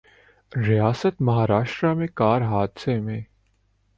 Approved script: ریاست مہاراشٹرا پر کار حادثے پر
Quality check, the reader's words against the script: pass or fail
fail